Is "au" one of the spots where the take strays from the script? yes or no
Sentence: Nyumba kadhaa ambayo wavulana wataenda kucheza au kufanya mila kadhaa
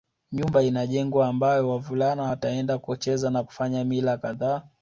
yes